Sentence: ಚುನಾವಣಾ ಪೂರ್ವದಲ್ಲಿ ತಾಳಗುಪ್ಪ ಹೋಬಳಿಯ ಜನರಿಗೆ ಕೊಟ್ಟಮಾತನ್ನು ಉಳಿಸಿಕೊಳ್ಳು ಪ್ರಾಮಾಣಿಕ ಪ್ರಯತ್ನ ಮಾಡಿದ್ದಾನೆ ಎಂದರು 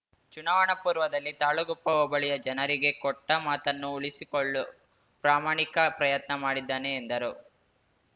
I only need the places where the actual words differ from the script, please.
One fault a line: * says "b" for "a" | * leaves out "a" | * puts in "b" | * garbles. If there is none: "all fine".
all fine